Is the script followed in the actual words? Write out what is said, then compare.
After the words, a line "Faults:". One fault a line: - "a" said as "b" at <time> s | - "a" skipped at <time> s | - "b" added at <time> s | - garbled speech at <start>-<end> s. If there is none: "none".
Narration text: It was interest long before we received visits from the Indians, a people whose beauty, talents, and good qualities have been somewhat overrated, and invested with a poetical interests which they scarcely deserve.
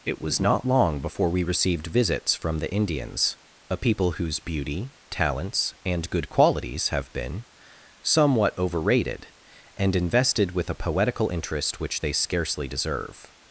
It was not long before we received visits from the Indians, a people whose beauty, talents, and good qualities have been somewhat overrated, and invested with a poetical interest which they scarcely deserve.
Faults:
- "interest" said as "not" at 0.4 s
- "interests" said as "interest" at 11.3 s